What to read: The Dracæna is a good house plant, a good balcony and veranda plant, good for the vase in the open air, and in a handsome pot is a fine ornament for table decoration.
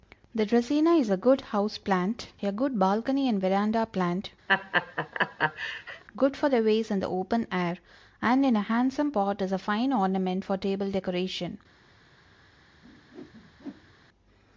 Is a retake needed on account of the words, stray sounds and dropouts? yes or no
yes